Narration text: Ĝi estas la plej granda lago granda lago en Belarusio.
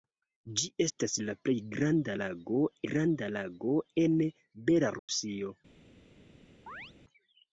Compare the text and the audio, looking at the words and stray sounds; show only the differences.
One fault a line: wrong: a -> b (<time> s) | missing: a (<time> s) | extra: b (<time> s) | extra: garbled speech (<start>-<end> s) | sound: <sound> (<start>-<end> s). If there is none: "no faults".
sound: dropout (5.0-5.1 s)
sound: chirp (6.7-6.9 s)